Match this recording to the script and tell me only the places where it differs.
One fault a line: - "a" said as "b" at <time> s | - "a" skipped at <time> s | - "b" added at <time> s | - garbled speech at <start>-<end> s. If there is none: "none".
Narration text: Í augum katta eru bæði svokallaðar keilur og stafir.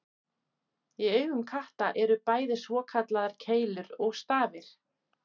none